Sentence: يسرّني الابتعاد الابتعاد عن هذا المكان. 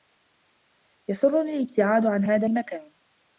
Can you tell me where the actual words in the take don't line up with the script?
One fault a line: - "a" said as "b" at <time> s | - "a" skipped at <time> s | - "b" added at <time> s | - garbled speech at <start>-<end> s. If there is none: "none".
- "الابتعاد" skipped at 2.0 s